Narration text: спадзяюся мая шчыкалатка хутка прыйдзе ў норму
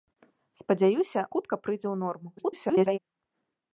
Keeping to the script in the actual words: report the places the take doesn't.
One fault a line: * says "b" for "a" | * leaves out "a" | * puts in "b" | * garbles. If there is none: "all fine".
* leaves out "мая шчыкалатка"
* garbles